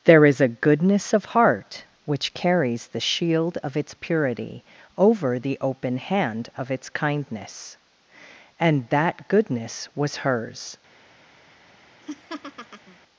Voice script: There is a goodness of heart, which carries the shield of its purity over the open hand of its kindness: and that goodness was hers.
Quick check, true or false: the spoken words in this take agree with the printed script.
true